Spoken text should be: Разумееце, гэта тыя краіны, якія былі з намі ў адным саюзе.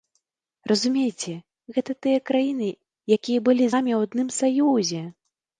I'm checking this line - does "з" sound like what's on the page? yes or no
no